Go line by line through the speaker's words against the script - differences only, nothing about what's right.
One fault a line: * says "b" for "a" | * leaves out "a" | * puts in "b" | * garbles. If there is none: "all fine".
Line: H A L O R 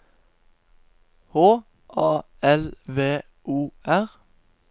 * puts in "V"